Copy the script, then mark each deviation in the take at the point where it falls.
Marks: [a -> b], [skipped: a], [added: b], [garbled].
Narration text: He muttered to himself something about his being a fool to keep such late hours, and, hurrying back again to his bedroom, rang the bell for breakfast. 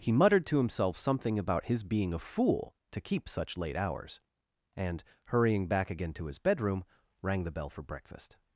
He muttered to himself something about his being a fool to keep such late hours, and, hurrying back again to his bedroom, rang the bell for breakfast.